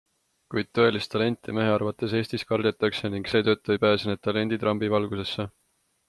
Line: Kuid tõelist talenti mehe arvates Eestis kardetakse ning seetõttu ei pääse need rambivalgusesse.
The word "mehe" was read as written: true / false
true